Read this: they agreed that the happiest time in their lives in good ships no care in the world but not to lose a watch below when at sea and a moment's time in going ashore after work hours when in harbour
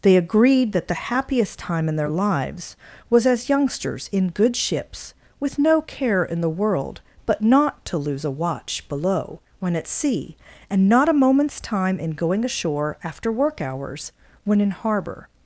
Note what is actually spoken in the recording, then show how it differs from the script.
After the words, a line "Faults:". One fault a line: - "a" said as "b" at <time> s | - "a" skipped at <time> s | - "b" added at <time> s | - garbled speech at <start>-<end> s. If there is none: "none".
they agreed that the happiest time in their lives was as youngsters in good ships with no care in the world but not to lose a watch below when at sea and not a moment's time in going ashore after work hours when in harbour
Faults:
- "was as youngsters" added at 3.1 s
- "with" added at 5.4 s
- "not" added at 10.9 s